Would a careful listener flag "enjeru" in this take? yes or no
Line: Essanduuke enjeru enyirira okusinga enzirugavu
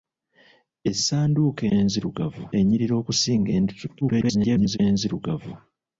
yes